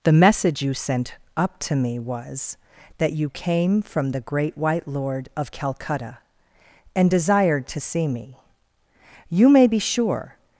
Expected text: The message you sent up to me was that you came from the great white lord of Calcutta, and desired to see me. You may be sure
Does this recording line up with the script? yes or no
yes